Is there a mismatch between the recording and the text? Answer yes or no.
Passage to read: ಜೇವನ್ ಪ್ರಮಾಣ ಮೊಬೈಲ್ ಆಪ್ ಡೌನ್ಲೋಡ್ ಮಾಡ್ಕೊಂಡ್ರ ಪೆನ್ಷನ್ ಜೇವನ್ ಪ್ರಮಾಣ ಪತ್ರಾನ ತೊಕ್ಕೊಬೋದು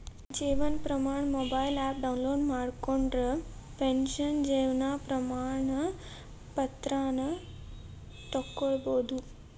no